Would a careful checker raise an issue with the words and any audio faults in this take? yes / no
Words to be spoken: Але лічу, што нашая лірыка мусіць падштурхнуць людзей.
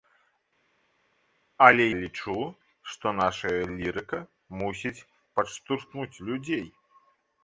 no